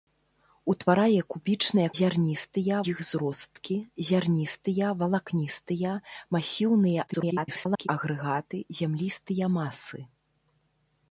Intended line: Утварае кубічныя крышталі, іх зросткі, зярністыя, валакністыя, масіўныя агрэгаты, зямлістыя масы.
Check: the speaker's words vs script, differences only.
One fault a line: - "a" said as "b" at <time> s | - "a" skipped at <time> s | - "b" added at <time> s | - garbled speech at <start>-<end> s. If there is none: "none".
- "крышталі" said as "зярністыя" at 2.0 s
- garbled speech at 7.1-7.9 s